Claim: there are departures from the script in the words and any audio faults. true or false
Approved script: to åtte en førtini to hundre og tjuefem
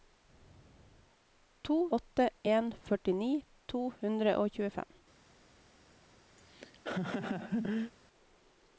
true